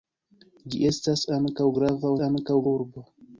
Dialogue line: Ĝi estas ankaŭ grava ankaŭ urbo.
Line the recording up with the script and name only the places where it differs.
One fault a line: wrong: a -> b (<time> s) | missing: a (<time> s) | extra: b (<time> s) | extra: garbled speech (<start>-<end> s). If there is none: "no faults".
no faults